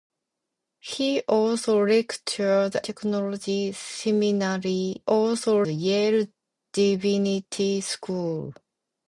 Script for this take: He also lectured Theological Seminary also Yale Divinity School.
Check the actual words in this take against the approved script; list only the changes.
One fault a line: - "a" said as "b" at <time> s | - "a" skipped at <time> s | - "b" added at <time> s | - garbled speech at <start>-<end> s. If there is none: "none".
none